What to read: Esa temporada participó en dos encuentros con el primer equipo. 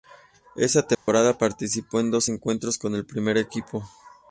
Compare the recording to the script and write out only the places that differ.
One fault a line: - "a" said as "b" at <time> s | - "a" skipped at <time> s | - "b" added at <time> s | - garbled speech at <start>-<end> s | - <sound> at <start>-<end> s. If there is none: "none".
- dropout at 0.9-1.1 s